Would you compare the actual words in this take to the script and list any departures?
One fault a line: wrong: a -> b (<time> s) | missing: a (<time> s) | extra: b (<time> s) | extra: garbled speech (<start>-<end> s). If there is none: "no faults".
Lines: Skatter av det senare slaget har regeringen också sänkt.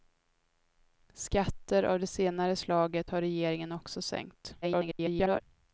extra: garbled speech (4.6-5.4 s)